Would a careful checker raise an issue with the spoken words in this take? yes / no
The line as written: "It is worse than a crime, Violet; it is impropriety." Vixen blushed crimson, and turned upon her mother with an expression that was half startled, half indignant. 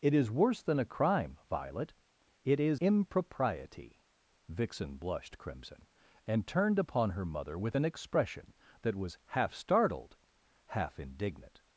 no